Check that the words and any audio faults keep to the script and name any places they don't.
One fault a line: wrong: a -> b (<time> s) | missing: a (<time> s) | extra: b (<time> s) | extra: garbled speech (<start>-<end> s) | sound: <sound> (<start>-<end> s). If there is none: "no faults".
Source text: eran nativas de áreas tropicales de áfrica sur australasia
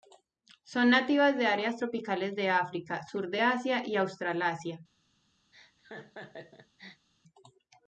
wrong: eran -> son (0.6 s)
extra: de asia y (3.3 s)
sound: laugh (5.5-7.1 s)